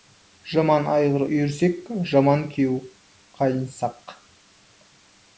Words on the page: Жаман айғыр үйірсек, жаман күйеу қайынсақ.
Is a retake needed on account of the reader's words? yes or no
no